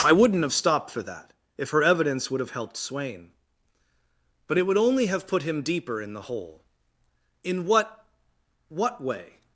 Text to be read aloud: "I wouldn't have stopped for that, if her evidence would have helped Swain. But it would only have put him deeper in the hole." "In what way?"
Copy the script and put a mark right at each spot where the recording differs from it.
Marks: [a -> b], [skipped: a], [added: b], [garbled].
"I wouldn't have stopped for that, if her evidence would have helped Swain. But it would only have put him deeper in the hole." "In what [added: what] way?"